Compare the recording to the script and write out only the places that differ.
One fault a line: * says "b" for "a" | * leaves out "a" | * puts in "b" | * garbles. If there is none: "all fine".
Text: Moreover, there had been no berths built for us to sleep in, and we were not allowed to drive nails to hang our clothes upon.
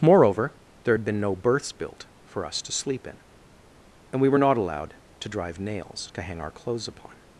all fine